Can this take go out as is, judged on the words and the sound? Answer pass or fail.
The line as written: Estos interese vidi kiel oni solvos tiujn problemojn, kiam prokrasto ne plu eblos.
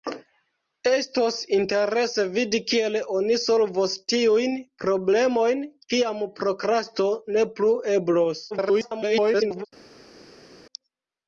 fail